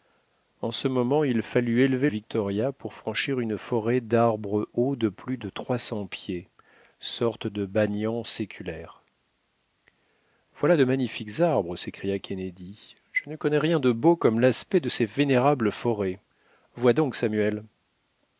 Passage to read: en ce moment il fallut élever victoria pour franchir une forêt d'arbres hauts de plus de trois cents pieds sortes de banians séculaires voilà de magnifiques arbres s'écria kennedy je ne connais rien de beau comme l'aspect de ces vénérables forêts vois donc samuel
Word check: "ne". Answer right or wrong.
right